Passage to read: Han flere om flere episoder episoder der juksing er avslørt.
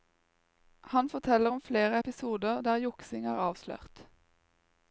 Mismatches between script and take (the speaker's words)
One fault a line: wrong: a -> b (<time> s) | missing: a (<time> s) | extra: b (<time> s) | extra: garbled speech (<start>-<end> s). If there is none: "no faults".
wrong: flere -> forteller (1.1 s)
missing: episoder (2.6 s)